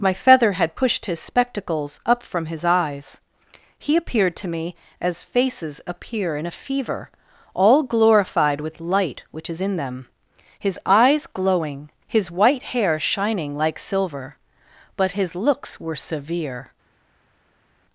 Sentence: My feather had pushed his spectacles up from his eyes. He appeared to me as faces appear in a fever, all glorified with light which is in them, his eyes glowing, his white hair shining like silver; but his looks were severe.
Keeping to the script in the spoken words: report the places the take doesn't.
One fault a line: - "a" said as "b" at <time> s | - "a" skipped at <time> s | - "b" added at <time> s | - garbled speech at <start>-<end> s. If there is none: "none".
none